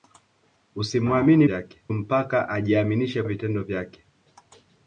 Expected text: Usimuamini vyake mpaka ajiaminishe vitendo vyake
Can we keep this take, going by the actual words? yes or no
yes